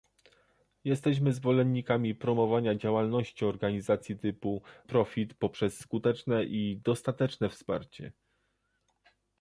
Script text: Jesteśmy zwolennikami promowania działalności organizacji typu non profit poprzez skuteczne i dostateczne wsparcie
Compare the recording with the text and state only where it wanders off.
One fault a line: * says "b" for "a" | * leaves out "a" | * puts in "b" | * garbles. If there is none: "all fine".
* leaves out "non"